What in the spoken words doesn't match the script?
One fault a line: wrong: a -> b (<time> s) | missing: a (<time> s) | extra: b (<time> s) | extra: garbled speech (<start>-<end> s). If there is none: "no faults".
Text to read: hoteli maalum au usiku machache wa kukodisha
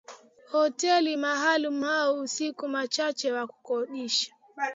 no faults